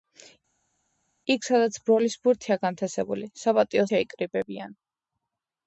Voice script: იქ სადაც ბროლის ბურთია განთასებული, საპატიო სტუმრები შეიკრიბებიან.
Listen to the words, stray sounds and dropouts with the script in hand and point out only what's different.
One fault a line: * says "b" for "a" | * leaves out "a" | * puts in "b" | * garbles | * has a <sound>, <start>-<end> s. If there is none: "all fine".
* leaves out "სტუმრები"